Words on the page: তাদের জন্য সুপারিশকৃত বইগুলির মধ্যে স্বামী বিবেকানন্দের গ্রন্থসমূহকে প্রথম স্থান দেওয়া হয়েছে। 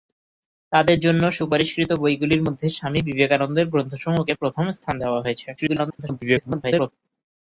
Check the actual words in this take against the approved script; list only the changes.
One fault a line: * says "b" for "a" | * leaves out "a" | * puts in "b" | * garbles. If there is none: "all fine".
* garbles